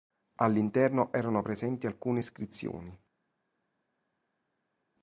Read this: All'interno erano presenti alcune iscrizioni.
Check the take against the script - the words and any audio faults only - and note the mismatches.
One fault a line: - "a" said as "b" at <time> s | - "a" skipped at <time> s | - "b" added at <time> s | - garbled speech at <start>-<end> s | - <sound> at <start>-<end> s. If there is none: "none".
none